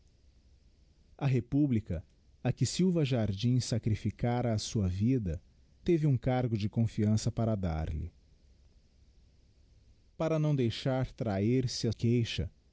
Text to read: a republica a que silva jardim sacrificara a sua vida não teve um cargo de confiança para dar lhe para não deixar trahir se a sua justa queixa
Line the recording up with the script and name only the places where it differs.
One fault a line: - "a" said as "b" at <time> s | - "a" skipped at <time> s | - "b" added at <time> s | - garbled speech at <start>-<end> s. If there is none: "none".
- "não" skipped at 5.4 s
- "sua justa" skipped at 11.9 s